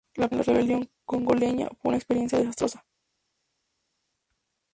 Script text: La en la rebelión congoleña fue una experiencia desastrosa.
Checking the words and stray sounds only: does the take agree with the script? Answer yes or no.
yes